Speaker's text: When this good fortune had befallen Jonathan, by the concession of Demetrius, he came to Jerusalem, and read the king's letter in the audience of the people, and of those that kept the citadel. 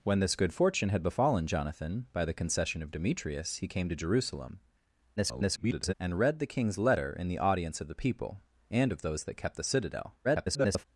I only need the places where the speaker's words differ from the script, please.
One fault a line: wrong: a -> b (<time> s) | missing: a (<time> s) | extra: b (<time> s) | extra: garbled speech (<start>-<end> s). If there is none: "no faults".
extra: garbled speech (5.2-5.9 s)
extra: garbled speech (10.2-10.9 s)